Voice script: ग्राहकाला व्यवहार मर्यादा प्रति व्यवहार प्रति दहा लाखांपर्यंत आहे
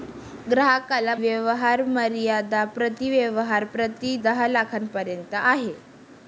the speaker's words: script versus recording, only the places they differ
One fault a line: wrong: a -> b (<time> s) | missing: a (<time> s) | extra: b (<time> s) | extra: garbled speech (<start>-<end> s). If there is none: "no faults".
no faults